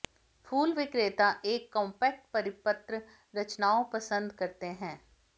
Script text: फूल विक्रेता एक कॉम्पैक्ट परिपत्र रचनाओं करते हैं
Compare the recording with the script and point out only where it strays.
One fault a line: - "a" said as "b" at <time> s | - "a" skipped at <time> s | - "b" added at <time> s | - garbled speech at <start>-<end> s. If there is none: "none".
- "पसंद" added at 3.9 s